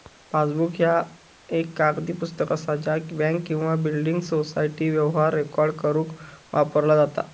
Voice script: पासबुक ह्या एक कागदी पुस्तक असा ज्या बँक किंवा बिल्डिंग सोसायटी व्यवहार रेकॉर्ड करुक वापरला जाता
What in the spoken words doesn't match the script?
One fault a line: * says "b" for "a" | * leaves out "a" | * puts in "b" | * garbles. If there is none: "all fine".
all fine